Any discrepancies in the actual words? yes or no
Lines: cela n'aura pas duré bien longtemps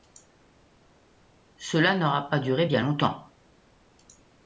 no